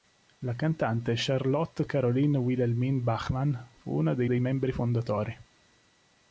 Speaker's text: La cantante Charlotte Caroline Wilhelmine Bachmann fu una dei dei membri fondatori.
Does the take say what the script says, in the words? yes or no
yes